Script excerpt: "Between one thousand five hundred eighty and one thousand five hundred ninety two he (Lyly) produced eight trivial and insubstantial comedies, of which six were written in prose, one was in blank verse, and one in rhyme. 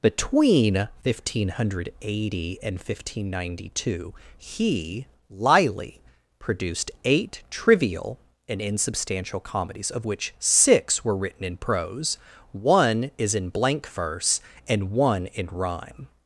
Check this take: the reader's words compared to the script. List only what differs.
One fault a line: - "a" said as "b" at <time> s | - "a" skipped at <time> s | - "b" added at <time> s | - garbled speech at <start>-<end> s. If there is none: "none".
- "was" said as "is" at 13.2 s